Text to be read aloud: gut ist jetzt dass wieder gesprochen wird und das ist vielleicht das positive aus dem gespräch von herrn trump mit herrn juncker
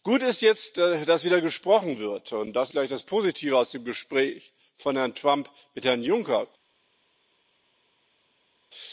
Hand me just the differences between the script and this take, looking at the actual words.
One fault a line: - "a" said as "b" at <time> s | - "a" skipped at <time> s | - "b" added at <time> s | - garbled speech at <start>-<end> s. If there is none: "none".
- "ist" skipped at 2.7 s